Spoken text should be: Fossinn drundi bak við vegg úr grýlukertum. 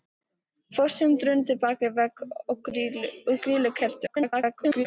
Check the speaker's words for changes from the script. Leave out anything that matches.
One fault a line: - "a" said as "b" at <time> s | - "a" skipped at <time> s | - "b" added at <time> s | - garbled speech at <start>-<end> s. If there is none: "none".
- garbled speech at 4.1-4.9 s